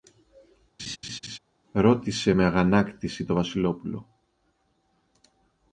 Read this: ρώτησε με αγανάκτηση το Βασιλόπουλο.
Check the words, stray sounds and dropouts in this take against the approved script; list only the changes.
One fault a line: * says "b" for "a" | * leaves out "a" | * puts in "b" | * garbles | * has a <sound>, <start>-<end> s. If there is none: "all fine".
* has a laugh, 0.8-1.4 s